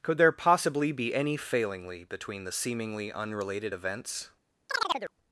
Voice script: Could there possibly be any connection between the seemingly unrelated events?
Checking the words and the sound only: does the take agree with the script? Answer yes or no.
no